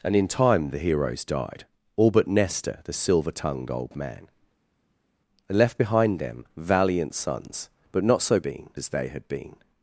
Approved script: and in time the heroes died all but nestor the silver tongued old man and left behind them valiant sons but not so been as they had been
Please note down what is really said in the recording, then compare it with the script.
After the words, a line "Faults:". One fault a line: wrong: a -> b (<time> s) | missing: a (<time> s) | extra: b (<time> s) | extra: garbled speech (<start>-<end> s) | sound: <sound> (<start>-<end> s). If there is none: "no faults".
and in time the heroes died all but nestor the silver tongued old man and left behind them valiant sons but not so been as they had been
Faults:
no faults